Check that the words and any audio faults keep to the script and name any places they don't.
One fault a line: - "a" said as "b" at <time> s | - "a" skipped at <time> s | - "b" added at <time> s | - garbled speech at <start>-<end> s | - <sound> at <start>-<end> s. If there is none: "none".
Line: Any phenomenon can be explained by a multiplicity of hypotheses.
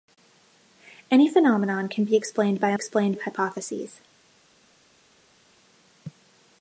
- "multiplicity" said as "explained" at 2.7 s